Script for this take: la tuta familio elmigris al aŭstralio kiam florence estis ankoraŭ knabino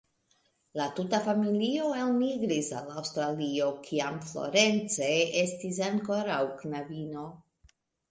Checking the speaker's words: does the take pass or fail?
pass